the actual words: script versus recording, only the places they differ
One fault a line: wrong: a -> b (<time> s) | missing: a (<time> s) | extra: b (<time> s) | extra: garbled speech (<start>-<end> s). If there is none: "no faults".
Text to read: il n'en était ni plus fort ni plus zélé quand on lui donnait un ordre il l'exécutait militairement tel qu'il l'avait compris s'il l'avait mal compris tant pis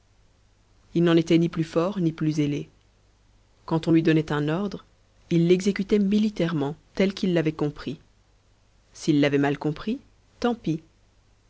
no faults